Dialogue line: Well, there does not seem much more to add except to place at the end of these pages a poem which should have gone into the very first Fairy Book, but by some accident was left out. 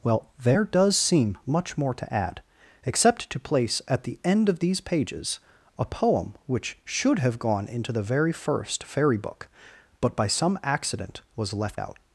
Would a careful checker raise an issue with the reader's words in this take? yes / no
yes